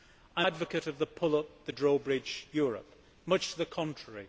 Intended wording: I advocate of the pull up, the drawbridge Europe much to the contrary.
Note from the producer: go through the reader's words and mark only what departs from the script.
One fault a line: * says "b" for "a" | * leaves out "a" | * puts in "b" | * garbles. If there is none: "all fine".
all fine